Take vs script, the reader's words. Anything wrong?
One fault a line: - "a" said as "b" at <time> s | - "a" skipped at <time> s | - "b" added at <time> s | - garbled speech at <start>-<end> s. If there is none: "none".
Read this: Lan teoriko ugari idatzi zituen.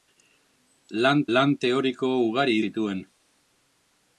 - "lan" added at 1.4 s
- "idatzi" skipped at 2.6 s